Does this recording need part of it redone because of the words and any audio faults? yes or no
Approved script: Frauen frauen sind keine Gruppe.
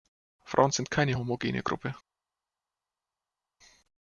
yes